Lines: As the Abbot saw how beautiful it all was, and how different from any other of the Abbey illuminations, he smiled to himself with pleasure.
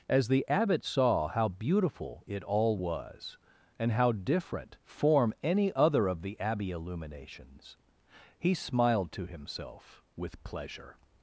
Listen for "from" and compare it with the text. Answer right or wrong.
wrong